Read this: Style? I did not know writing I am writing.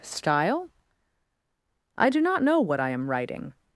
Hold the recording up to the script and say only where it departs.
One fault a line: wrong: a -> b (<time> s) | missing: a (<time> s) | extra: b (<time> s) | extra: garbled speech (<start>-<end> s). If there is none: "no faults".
wrong: did -> do (2.1 s)
wrong: writing -> what (2.6 s)